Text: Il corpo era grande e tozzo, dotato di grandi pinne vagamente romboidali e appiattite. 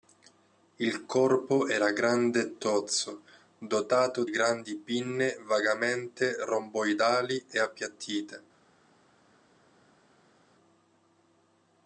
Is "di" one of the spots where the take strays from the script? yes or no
yes